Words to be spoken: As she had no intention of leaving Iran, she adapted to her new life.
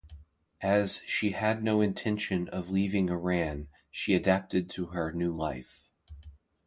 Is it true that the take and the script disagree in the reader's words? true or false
false